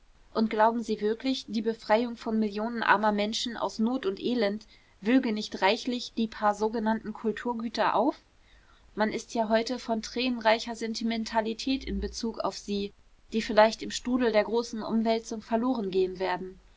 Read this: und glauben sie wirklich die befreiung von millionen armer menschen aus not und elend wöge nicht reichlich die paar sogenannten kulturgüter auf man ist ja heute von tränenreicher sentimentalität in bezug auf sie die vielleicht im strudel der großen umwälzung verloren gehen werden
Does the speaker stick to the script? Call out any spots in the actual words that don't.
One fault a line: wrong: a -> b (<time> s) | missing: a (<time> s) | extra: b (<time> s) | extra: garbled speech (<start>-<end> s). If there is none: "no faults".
no faults